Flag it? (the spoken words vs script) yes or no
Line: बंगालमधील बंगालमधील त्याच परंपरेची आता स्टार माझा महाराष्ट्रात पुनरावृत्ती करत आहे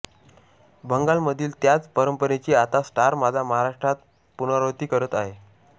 yes